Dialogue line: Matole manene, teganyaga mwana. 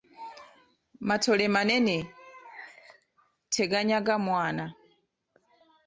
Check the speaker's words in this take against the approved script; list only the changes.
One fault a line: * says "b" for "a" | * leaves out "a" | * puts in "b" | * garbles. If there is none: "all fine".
all fine